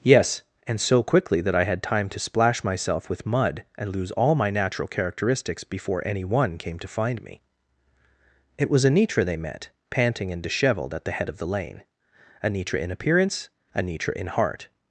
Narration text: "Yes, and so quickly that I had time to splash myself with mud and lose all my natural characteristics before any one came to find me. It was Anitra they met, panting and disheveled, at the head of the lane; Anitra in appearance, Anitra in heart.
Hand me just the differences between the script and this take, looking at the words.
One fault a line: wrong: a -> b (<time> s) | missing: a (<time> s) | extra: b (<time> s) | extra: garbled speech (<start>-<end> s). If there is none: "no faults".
no faults